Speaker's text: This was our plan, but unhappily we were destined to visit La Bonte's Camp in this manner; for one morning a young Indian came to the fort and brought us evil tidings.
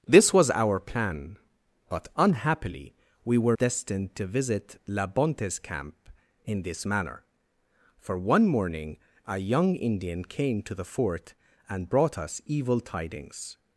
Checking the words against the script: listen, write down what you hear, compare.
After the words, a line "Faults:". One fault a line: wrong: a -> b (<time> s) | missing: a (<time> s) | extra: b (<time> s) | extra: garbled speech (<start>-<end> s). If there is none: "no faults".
This was our plan, but unhappily we were destined to visit La Bonte's Camp in this manner; for one morning a young Indian came to the fort and brought us evil tidings.
Faults:
no faults